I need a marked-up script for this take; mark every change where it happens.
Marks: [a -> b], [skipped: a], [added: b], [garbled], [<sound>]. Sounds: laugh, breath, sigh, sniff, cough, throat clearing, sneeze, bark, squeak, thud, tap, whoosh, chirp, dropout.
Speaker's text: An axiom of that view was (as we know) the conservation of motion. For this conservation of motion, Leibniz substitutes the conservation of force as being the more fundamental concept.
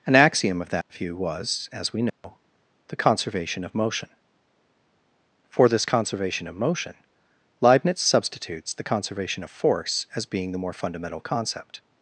An axiom of that [dropout] view was (as we know) [dropout] the conservation of motion. For this conservation of motion, Leibniz substitutes the conservation of force as being the more fundamental concept.